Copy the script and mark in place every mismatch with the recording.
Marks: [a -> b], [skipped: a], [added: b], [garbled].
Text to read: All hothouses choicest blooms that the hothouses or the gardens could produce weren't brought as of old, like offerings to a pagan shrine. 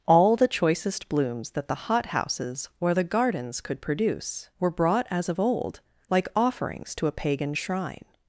All [hothouses -> the] choicest blooms that the hothouses or the gardens could produce [weren't -> were] brought as of old, like offerings to a pagan shrine.